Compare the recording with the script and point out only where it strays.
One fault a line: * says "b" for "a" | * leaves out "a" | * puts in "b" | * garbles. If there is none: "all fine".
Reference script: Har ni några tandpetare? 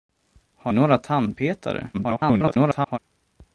* leaves out "ni"
* garbles